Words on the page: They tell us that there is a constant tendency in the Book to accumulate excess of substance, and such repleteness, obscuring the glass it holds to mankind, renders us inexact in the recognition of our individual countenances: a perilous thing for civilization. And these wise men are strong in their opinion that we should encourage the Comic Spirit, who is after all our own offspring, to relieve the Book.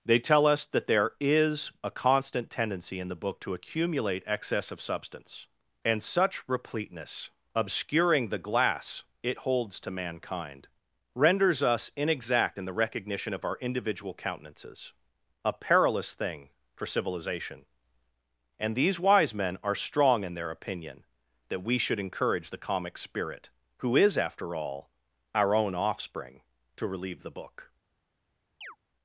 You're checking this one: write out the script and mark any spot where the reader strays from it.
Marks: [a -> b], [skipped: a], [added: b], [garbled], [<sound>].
They tell us that there is a constant tendency in the Book to accumulate excess of substance, and such repleteness, obscuring the glass it holds to mankind, renders us inexact in the recognition of our individual countenances: a perilous thing for civilization. And these wise men are strong in their opinion that we should encourage the Comic Spirit, who is after all our own offspring, to relieve the Book. [chirp]